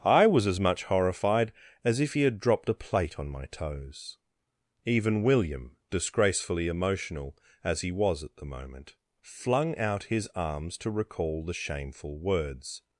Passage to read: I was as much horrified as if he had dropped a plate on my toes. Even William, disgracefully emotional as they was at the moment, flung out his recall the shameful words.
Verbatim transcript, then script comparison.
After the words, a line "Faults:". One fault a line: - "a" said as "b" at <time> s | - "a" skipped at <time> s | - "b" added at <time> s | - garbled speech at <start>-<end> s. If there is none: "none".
I was as much horrified as if he had dropped a plate on my toes. Even William, disgracefully emotional as he was at the moment, flung out his arms to recall the shameful words.
Faults:
- "they" said as "he" at 7.8 s
- "arms to" added at 10.4 s